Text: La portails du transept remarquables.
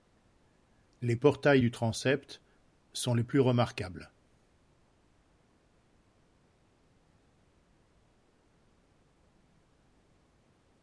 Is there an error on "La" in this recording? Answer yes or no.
yes